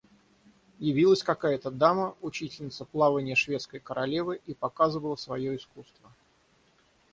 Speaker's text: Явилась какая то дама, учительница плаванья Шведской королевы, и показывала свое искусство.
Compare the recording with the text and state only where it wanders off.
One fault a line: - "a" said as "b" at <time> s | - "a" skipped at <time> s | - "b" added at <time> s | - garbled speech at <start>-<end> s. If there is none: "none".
none